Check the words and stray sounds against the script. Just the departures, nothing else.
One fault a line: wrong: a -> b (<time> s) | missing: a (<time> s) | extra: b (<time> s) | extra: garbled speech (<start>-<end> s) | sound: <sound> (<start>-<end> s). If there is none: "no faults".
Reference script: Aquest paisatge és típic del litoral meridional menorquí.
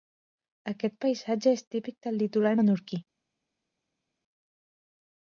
missing: meridional (2.6 s)